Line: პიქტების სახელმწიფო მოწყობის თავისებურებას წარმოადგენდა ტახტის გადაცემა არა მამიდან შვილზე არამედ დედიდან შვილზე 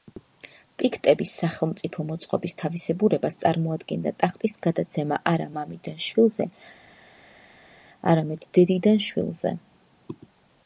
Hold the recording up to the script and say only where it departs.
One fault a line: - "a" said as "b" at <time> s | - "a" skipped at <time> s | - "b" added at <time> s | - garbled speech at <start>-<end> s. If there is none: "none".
none